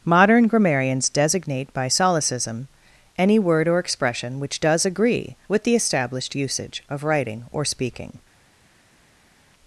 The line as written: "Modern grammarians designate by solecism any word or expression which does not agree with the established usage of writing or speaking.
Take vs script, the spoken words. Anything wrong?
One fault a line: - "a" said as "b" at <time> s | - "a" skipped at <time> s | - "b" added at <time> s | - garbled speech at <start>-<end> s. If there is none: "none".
- "not" skipped at 4.8 s